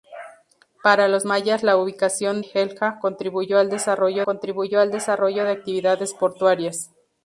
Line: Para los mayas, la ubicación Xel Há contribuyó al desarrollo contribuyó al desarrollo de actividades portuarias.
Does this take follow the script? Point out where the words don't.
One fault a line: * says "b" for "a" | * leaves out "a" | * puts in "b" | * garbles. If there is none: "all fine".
all fine